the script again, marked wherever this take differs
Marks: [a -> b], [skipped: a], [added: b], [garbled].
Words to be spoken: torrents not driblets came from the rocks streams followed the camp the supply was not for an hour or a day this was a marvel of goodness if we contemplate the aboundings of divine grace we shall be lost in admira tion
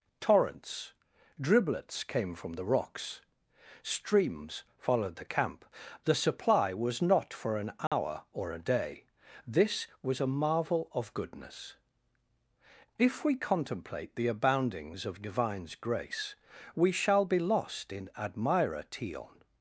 torrents [skipped: not] driblets came from the rocks streams followed the camp the supply was not for an hour or a day this was a marvel of goodness if we contemplate the aboundings of [divine -> divines] grace we shall be lost in admira tion